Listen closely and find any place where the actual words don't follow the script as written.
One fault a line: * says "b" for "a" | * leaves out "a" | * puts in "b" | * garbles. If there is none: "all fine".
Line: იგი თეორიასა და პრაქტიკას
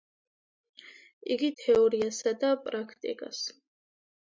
all fine